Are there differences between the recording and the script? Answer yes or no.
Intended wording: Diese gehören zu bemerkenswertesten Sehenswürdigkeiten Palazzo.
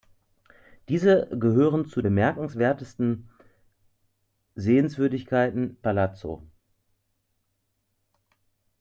no